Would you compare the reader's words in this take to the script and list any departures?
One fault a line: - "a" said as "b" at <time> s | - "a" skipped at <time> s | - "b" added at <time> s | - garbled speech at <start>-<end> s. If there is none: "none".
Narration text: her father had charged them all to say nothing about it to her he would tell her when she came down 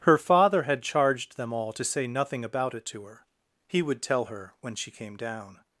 none